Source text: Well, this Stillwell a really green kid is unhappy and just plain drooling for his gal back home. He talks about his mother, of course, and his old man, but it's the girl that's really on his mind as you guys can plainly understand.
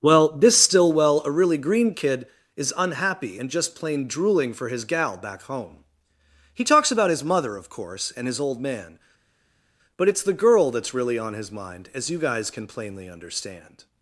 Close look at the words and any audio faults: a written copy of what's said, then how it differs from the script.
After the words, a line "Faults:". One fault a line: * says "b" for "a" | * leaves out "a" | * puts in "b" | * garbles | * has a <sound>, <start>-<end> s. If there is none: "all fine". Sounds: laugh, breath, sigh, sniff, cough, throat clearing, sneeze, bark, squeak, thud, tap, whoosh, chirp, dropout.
Well, this Stillwell a really green kid is unhappy and just plain drooling for his gal back home. He talks about his mother, of course, and his old man, but it's the girl that's really on his mind as you guys can plainly understand.
Faults:
all fine